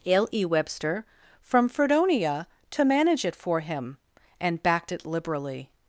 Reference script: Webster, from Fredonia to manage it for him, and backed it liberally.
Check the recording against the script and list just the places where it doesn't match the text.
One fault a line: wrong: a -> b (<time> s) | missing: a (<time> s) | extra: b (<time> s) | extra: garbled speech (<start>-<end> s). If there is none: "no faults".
extra: l e (0.1 s)